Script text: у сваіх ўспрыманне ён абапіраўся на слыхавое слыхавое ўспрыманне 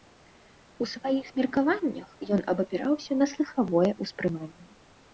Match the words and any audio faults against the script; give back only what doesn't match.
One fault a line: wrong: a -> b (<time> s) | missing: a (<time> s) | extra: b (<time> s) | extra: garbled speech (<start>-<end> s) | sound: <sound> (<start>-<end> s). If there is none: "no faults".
wrong: ўспрыманне -> меркаваннях (1.4 s)
missing: слыхавое (3.9 s)